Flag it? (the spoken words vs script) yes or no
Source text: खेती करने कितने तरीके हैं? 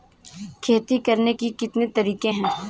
yes